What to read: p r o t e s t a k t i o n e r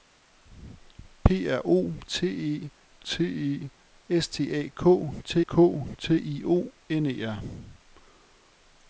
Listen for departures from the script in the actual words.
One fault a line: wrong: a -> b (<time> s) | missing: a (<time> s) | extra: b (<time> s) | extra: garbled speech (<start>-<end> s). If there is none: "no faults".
extra: t e (3.0 s)
extra: k t (5.4 s)